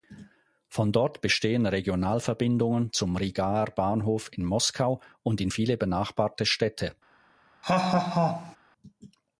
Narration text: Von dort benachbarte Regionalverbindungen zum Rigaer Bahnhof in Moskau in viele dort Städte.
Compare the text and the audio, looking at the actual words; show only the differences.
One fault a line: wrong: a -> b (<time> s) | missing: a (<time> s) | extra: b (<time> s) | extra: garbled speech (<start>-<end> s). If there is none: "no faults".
wrong: benachbarte -> bestehen (1.2 s)
extra: und (5.2 s)
wrong: dort -> benachbarte (5.8 s)